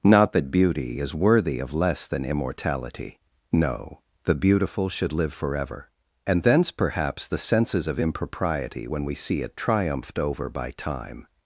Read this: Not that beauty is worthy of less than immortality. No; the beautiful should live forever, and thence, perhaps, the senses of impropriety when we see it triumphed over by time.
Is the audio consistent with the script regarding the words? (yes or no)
yes